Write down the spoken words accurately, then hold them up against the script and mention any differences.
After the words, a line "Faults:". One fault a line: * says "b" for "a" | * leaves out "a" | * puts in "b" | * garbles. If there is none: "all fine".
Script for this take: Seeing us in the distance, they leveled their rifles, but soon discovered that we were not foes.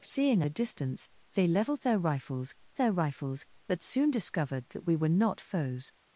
Seeing the distance, they leveled their rifles their rifles, but soon discovered that we were not foes.
Faults:
* leaves out "us in"
* puts in "their rifles"